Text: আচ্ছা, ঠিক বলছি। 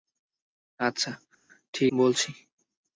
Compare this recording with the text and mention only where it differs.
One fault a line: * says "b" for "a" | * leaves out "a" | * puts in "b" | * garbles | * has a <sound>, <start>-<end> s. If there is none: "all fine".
all fine